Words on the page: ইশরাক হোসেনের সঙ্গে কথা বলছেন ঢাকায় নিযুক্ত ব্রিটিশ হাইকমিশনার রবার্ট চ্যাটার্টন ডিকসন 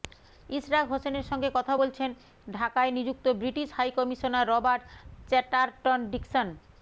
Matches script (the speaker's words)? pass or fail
pass